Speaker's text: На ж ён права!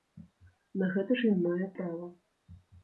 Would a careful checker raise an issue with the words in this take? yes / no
yes